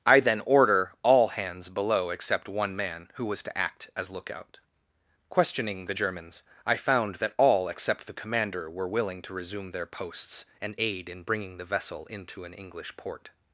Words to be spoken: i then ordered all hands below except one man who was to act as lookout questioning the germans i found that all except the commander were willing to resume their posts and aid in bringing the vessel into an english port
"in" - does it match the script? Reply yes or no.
yes